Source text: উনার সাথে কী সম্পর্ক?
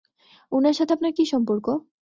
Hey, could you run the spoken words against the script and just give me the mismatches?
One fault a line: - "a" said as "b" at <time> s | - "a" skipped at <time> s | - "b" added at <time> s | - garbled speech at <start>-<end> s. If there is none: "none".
- "আপনার" added at 0.9 s